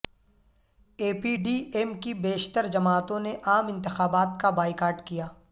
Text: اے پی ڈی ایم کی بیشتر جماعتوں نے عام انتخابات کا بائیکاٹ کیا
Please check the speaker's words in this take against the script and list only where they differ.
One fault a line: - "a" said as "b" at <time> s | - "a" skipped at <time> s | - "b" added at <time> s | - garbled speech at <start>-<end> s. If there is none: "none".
none